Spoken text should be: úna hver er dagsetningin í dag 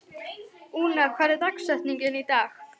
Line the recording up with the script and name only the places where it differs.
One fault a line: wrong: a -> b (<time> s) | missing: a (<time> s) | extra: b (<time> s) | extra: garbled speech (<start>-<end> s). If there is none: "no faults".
no faults